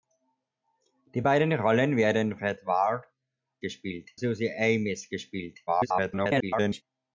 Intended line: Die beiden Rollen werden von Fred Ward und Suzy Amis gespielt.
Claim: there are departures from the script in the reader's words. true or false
true